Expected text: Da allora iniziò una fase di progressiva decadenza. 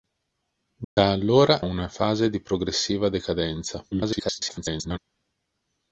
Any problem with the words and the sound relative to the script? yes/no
yes